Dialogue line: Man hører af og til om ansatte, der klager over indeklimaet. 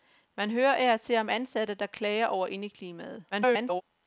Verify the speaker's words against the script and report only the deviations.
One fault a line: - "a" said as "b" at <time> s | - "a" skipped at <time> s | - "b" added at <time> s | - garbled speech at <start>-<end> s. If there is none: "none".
- garbled speech at 3.3-3.8 s